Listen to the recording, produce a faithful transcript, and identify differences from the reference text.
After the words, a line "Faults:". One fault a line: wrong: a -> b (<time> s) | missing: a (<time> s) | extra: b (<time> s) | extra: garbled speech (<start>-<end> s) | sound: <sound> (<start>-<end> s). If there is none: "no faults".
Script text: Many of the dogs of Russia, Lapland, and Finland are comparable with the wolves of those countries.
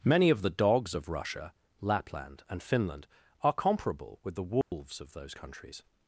Many of the dogs of Russia, Lapland, and Finland are comparable with the wolves of those countries.
Faults:
sound: dropout (4.6-4.7 s)